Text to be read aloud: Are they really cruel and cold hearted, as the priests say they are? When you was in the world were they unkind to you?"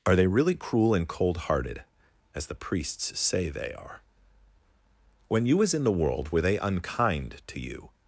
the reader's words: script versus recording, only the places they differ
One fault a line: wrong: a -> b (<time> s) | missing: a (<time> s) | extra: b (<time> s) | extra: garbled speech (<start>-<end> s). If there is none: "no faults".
no faults